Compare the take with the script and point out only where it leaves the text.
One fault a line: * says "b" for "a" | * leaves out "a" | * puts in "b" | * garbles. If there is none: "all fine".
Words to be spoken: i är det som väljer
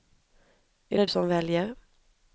all fine